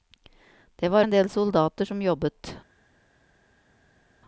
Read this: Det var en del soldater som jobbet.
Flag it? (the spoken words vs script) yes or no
no